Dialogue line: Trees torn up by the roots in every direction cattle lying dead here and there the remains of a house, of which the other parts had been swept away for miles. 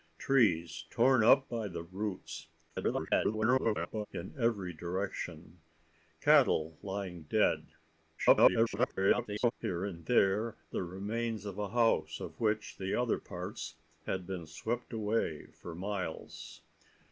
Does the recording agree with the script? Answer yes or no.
no